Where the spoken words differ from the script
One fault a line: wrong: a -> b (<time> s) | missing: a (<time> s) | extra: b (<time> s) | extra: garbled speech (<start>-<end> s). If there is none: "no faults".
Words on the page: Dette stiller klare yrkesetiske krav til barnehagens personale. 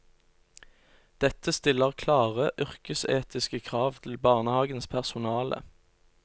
no faults